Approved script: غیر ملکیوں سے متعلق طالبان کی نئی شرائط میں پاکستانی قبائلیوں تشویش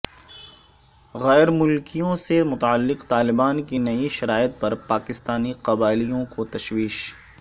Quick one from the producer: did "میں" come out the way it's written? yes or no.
no